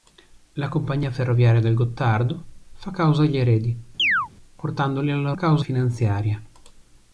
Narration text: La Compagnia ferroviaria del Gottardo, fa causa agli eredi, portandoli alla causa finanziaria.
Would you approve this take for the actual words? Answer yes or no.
yes